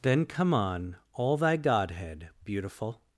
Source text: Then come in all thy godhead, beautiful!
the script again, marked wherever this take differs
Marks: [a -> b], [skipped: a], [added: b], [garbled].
Then come [in -> on] all thy godhead, beautiful!